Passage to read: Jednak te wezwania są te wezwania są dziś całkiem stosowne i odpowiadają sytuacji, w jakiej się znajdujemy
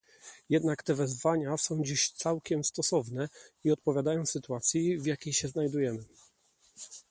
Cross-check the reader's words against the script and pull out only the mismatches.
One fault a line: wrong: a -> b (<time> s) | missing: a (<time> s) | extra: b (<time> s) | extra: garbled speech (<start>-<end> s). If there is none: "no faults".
missing: te wezwania są (1.8 s)